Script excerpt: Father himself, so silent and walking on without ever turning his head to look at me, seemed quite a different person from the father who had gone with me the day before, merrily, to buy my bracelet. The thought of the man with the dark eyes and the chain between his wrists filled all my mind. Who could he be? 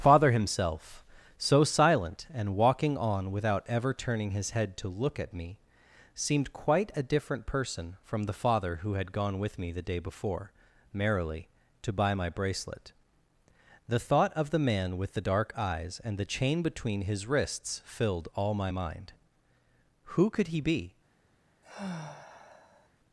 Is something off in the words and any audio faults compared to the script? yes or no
yes